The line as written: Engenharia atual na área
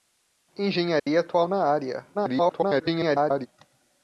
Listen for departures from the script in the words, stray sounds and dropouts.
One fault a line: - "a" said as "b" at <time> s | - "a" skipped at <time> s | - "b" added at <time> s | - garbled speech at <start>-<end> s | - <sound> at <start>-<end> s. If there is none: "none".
- dropout at 1.0-1.1 s
- garbled speech at 2.1-3.5 s